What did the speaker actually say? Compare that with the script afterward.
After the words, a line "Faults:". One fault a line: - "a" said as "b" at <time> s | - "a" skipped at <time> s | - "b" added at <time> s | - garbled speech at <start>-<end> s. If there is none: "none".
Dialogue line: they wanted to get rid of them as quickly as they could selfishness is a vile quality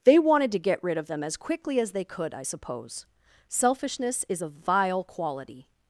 they wanted to get rid of them as quickly as they could i suppose selfishness is a vile quality
Faults:
- "i suppose" added at 2.3 s